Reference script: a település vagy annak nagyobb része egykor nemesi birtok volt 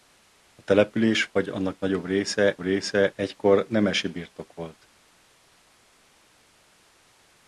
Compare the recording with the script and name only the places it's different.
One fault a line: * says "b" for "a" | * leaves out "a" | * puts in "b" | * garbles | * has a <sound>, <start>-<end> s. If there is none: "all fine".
* puts in "része"